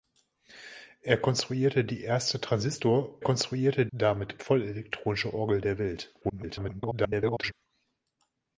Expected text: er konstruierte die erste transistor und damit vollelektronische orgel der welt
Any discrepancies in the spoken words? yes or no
yes